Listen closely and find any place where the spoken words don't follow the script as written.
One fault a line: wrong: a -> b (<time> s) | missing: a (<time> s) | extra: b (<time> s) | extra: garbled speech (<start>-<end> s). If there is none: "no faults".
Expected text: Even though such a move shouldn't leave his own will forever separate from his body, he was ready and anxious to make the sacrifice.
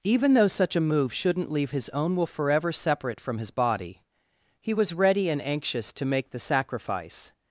no faults